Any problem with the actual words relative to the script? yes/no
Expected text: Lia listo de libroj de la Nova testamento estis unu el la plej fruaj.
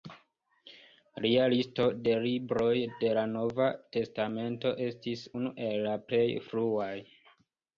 no